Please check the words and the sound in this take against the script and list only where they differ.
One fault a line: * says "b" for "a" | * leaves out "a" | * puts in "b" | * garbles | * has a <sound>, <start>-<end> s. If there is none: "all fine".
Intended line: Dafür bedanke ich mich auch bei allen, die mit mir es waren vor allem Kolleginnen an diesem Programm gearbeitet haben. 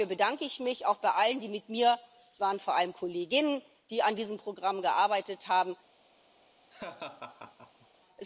* has a laugh, 6.7-7.9 s